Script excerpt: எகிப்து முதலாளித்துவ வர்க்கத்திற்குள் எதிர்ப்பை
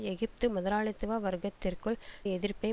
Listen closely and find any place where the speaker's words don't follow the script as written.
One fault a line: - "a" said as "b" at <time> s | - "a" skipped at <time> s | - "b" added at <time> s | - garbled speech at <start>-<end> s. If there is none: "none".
none